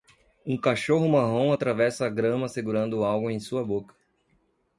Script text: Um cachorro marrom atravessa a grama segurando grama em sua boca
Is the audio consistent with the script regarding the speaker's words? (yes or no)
no